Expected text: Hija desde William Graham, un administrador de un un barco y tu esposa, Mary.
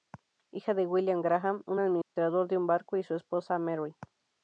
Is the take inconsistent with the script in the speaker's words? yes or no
yes